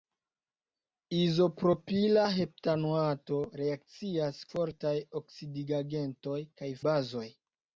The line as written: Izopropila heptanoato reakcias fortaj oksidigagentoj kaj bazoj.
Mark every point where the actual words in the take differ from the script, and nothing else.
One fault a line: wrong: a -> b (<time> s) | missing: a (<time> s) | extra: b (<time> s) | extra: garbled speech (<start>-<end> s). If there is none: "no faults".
no faults